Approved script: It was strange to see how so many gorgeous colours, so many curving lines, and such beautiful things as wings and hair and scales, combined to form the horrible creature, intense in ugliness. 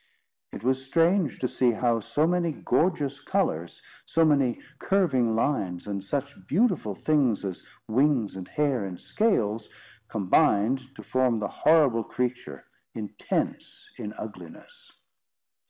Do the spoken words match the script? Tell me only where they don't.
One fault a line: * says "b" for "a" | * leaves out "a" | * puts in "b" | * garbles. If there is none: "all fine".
all fine